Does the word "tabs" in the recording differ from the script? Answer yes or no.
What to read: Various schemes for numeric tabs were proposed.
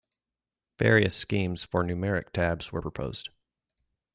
no